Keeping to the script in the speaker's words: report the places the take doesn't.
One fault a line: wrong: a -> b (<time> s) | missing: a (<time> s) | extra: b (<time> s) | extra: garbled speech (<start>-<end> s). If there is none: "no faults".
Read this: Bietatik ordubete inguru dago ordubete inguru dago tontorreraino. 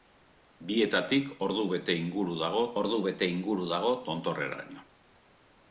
no faults